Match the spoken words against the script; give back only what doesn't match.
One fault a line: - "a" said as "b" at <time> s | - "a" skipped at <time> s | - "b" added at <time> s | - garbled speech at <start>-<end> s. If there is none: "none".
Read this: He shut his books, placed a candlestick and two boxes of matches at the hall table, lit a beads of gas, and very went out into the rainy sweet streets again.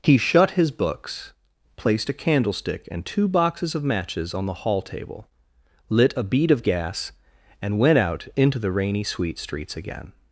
- "at" said as "on" at 4.3 s
- "beads" said as "bead" at 6.2 s
- "very" skipped at 7.8 s